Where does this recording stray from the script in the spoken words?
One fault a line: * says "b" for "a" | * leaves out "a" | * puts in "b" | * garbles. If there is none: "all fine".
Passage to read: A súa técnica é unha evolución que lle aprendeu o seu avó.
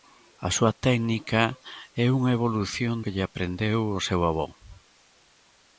all fine